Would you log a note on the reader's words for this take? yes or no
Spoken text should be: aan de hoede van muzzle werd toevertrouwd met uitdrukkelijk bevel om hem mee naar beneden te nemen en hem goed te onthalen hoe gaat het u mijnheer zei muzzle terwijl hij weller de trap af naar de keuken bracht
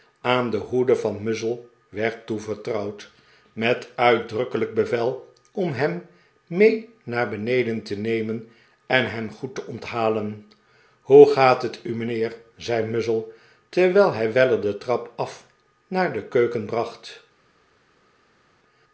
no